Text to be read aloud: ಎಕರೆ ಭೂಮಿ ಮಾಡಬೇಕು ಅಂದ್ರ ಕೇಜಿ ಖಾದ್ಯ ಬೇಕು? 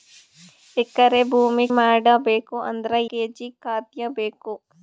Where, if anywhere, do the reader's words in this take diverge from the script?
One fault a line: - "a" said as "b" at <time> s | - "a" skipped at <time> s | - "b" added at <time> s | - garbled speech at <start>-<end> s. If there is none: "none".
none